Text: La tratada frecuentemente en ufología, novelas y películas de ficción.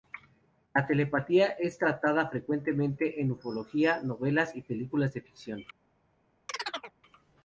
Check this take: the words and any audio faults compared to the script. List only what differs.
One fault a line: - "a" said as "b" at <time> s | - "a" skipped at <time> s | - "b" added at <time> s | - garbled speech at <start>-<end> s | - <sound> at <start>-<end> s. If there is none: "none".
- "telepatía es" added at 0.9 s
- chirp at 6.5-6.9 s